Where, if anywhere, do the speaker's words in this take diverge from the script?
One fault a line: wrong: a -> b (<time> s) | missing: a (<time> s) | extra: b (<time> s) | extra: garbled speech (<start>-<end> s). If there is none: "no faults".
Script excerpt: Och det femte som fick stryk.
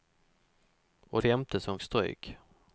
missing: det (1.2 s)
missing: fick (1.8 s)